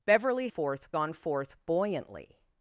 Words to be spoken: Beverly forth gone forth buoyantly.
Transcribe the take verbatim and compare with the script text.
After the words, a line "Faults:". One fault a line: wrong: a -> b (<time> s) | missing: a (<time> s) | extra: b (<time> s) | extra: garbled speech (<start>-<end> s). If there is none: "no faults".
Beverly forth gone forth buoyantly.
Faults:
no faults